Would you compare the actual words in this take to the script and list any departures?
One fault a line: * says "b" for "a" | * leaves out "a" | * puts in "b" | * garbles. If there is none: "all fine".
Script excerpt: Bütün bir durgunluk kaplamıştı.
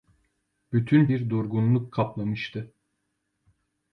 all fine